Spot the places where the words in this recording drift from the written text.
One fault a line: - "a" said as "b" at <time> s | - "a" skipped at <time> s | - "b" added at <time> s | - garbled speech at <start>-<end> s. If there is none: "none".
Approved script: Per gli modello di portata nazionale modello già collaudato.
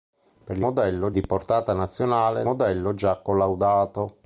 none